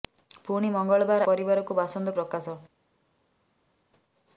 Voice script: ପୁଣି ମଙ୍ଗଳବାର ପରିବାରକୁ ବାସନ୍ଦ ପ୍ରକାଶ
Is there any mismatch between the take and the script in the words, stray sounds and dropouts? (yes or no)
no